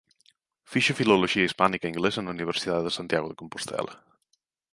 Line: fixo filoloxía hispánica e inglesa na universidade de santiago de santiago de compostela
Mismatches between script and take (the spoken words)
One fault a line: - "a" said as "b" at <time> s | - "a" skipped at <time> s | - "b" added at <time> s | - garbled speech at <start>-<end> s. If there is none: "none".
- "santiago de" skipped at 3.4 s